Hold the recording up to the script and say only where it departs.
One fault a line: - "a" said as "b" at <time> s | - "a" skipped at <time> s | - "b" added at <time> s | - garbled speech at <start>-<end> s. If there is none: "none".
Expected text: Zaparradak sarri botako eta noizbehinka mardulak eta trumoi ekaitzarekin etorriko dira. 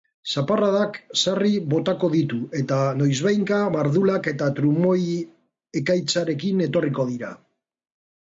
- "ditu" added at 2.1 s